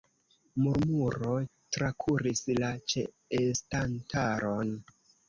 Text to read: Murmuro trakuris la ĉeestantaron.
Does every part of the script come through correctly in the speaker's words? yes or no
yes